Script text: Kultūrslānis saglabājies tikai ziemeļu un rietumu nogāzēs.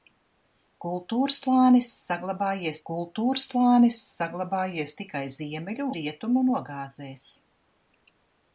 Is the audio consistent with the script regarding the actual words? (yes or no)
no